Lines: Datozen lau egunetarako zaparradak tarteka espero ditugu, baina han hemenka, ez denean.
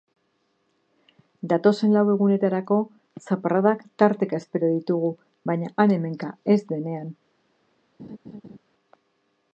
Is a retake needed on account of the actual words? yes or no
no